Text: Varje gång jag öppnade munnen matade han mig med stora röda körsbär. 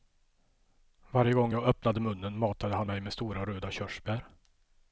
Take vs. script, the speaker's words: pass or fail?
pass